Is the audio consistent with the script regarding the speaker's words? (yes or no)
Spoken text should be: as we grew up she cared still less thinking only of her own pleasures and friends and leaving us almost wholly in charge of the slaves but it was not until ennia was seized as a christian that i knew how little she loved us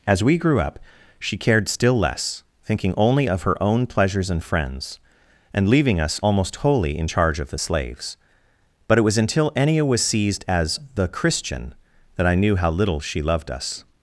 no